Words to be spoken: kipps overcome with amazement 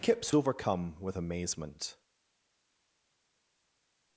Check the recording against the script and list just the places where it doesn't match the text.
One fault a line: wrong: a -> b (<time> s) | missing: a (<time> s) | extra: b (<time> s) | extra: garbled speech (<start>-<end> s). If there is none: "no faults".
no faults